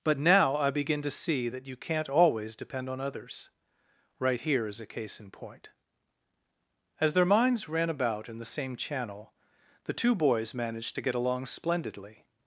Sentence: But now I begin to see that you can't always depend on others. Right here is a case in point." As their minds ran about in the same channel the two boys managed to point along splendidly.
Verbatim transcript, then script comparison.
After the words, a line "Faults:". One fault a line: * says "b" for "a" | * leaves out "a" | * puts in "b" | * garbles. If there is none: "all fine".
But now I begin to see that you can't always depend on others. Right here is a case in point." As their minds ran about in the same channel the two boys managed to get along splendidly.
Faults:
* says "get" for "point"